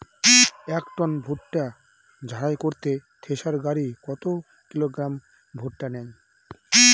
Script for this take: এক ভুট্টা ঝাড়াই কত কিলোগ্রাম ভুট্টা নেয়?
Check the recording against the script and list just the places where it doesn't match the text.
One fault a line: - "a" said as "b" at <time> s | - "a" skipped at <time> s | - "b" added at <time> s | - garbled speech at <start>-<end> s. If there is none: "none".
- "টন" added at 1.0 s
- "করতে থেসার গাড়ী" added at 2.6 s